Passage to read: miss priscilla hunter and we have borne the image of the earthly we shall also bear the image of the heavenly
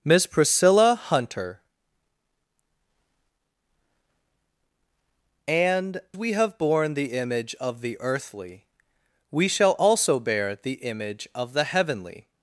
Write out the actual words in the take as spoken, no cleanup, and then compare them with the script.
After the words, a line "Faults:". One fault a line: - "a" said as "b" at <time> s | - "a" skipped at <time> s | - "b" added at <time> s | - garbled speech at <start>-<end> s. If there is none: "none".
miss priscilla hunter and we have borne the image of the earthly we shall also bear the image of the heavenly
Faults:
none